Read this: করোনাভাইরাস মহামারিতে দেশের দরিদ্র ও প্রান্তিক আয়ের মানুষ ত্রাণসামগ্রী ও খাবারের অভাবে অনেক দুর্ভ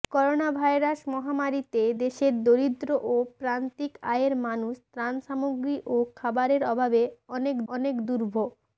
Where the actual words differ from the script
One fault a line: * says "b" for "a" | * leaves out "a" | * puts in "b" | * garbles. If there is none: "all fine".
* puts in "অনেক"